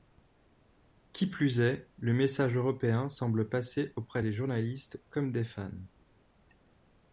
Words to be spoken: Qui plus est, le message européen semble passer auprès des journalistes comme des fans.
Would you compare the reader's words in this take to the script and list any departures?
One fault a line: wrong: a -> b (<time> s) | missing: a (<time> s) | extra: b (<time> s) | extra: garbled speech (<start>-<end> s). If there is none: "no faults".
no faults